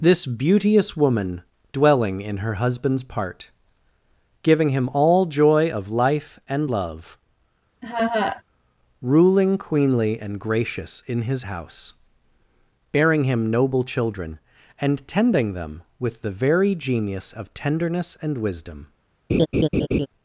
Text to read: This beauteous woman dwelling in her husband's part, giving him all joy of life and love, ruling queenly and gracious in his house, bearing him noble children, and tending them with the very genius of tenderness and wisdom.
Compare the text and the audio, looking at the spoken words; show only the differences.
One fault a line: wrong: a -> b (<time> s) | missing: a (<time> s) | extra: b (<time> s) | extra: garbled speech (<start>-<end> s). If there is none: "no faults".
no faults